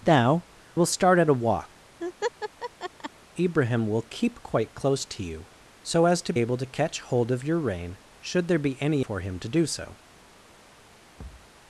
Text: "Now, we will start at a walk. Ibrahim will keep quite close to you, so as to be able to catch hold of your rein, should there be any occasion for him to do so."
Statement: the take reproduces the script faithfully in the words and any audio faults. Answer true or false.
false